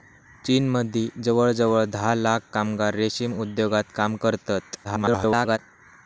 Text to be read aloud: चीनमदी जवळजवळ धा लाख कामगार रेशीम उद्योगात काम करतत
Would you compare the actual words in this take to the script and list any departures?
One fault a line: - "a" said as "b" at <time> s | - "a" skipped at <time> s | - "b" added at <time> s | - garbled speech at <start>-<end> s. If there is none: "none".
- garbled speech at 4.8-5.6 s